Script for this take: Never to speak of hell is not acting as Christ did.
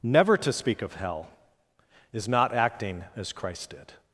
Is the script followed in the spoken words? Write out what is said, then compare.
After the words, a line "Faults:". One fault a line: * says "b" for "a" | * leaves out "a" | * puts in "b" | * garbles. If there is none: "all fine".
Never to speak of hell is not acting as Christ did.
Faults:
all fine